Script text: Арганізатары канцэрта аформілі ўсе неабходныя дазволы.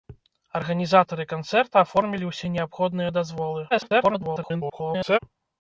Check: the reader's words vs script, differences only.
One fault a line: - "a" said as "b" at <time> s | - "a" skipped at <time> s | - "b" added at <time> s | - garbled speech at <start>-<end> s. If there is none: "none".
- garbled speech at 3.7-5.2 s